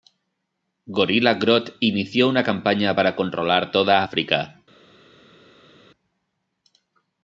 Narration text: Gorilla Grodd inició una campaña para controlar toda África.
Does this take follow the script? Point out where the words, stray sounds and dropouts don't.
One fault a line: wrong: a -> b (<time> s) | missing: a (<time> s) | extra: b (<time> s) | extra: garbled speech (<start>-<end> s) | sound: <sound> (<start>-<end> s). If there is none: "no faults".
no faults